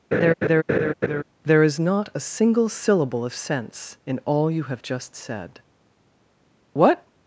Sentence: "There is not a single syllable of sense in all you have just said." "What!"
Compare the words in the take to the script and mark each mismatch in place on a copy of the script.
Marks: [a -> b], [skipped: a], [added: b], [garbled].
"There is not a single syllable of sense in all you have just said." "What!"